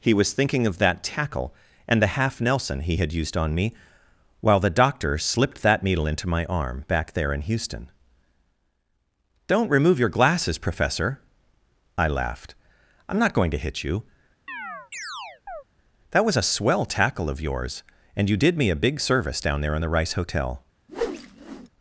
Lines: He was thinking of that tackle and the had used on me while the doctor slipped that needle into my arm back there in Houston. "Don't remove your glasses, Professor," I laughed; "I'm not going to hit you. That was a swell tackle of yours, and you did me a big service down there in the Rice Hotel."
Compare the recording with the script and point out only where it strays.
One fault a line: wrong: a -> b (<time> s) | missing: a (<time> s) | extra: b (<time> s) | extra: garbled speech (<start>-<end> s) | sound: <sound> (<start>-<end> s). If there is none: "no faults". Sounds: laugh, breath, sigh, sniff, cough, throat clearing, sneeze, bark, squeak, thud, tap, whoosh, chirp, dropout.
extra: half Nelson he (2.2 s)
sound: chirp (14.5-15.6 s)
sound: whoosh (20.9-21.7 s)